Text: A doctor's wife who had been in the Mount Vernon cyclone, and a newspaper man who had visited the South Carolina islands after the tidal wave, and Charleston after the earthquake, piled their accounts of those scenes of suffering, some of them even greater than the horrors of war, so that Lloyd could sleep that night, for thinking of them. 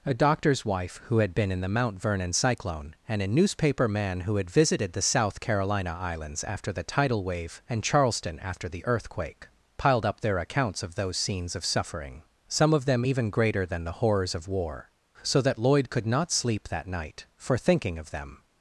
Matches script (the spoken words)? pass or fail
fail